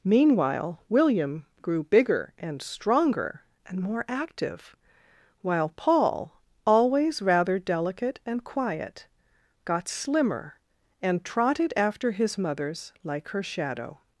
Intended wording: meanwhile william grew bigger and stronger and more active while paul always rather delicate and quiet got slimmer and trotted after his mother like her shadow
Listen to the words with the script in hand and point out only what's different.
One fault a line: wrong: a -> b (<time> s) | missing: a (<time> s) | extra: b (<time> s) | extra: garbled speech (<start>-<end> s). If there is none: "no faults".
wrong: mother -> mothers (12.4 s)